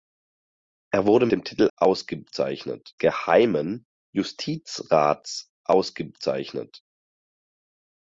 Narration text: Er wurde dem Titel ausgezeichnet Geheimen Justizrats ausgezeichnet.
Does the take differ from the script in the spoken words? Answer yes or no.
no